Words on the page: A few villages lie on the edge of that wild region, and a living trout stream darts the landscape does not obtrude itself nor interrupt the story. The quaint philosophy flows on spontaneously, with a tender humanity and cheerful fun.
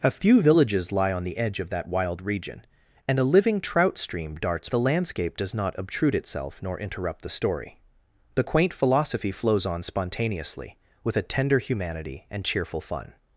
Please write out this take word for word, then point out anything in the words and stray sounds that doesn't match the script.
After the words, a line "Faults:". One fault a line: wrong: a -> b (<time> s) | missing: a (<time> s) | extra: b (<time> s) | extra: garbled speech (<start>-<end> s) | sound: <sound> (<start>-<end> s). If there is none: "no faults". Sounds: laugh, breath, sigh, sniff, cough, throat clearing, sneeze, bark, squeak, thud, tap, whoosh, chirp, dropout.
A few villages lie on the edge of that wild region, and a living trout stream darts the landscape does not obtrude itself nor interrupt the story. The quaint philosophy flows on spontaneously, with a tender humanity and cheerful fun.
Faults:
no faults